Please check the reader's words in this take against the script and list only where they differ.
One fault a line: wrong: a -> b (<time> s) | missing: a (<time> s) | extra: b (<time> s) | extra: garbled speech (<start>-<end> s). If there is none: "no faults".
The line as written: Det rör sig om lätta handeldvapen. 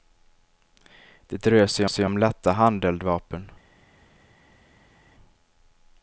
extra: sig (1.9 s)